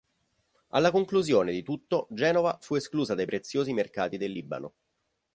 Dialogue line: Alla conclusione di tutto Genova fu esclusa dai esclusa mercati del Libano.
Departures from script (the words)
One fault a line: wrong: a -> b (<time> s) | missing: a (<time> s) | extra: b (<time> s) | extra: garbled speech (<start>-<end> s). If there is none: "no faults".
wrong: esclusa -> preziosi (3.3 s)